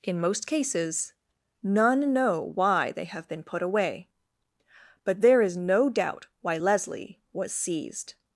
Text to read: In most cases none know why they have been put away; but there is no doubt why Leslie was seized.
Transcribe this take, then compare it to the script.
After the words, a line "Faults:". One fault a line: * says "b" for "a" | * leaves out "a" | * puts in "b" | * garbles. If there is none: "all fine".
In most cases none know why they have been put away; but there is no doubt why Leslie was seized.
Faults:
all fine